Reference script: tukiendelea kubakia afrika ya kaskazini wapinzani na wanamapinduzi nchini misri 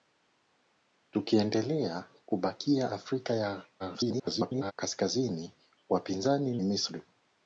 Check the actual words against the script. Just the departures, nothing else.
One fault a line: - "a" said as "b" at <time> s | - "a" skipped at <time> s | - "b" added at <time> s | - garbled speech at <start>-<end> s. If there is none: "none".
- garbled speech at 3.8-4.7 s
- "na wanamapinduzi nchini" skipped at 6.6 s